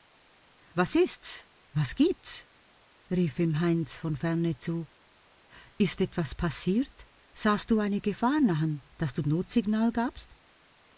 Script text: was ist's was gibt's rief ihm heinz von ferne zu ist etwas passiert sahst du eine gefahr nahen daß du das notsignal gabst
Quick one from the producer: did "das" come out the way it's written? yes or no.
no